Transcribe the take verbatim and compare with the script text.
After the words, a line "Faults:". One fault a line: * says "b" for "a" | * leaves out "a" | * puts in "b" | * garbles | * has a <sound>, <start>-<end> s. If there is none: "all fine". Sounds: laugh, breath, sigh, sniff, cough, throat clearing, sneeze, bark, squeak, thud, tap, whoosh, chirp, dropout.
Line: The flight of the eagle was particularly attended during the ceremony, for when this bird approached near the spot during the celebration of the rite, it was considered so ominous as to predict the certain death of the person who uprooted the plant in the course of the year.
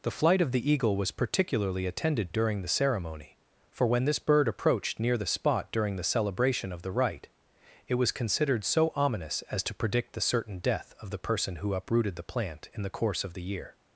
The flight of the eagle was particularly attended during the ceremony, for when this bird approached near the spot during the celebration of the rite, it was considered so ominous as to predict the certain death of the person who uprooted the plant in the course of the year.
Faults:
all fine